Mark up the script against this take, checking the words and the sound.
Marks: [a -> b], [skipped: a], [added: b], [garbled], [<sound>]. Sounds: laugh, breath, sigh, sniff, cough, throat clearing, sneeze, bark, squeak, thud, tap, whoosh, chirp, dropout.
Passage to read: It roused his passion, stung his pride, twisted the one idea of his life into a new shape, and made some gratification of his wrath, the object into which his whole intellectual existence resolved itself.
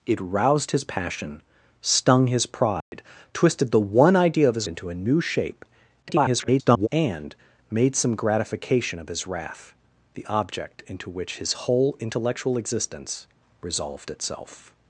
It roused his passion, stung his pride, [dropout] twisted the one idea of his [skipped: life] into a new shape, [garbled] and made some gratification of his wrath, the object into which his whole intellectual existence resolved itself.